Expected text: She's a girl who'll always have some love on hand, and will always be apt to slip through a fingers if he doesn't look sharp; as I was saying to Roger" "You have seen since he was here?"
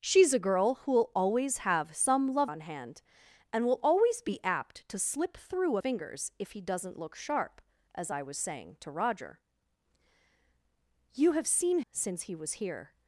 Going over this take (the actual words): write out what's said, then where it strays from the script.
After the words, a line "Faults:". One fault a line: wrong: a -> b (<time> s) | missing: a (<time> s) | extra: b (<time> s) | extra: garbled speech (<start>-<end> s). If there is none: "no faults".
She's a girl who'll always have some love on hand, and will always be apt to slip through a fingers if he doesn't look sharp; as I was saying to Roger" "You have seen since he was here?"
Faults:
no faults